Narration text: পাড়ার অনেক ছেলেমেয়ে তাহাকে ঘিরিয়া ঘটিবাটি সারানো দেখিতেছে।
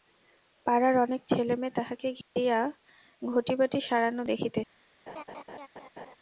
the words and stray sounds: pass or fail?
fail